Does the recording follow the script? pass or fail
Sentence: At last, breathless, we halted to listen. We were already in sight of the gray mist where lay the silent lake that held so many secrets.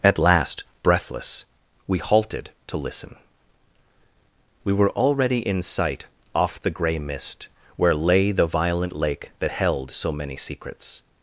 fail